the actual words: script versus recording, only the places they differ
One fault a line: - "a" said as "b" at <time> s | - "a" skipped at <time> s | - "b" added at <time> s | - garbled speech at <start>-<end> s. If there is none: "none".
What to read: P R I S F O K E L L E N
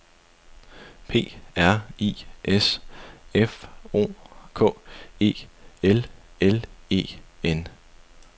none